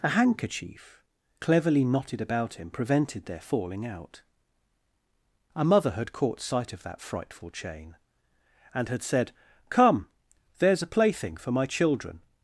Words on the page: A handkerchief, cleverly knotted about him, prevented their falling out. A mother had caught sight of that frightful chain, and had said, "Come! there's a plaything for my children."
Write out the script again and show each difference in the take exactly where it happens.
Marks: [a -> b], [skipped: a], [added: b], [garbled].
A handkerchief, cleverly knotted about him, prevented their falling out. A mother had caught sight of that frightful chain, and had said, "Come! there's a plaything for my children."